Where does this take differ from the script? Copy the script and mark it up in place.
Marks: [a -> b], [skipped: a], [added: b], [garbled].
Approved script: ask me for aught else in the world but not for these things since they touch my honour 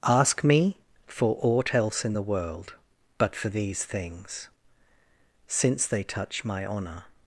ask me for aught else in the world but [skipped: not] for these things since they touch my honour